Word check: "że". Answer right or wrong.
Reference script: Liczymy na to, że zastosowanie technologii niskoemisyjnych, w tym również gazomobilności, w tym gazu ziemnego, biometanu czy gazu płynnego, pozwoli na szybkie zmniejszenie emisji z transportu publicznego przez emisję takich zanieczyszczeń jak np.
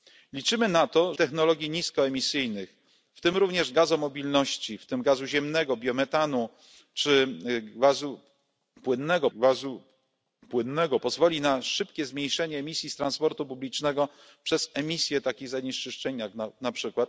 wrong